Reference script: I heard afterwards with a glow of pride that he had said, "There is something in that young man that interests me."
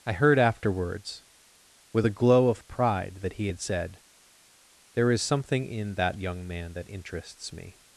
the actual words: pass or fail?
pass